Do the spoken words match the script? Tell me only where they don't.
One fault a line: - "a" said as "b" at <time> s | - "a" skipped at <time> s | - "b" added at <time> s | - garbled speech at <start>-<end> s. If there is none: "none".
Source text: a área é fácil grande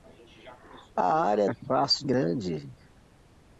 none